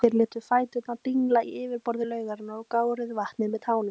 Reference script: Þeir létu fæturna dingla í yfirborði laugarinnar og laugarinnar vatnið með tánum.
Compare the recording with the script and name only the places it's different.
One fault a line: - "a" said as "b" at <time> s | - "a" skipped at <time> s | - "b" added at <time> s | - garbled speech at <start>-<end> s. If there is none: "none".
- "laugarinnar" said as "gáruðu" at 2.7 s